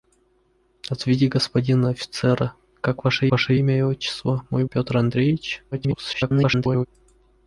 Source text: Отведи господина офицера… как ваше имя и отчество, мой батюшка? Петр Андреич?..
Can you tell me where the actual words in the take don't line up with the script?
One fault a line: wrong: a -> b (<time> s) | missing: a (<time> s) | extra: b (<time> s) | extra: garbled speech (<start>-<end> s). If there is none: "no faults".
extra: ваше (3.3 s)
missing: батюшка (4.7 s)
extra: garbled speech (5.7-6.9 s)